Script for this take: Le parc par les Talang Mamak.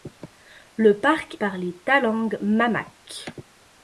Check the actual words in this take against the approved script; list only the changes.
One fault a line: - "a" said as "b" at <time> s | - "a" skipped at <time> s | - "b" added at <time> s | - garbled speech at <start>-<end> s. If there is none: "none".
none